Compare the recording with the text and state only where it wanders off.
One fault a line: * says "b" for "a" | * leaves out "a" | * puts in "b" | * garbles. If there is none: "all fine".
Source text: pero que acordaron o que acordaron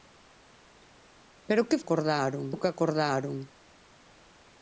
all fine